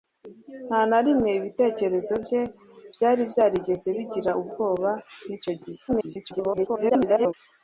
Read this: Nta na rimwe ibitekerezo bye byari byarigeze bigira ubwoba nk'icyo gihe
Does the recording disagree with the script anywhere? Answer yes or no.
yes